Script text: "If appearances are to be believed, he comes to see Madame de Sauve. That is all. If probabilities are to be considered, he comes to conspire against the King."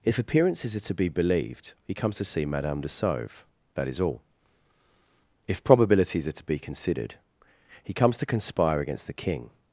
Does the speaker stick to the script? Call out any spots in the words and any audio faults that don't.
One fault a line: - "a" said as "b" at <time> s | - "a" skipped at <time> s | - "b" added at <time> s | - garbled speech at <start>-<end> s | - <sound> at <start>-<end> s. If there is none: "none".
none